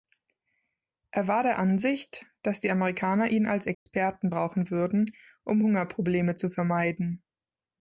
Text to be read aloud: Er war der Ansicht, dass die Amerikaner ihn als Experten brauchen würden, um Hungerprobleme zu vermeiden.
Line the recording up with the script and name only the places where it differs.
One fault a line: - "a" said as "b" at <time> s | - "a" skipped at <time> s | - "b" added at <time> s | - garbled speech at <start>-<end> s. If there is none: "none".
none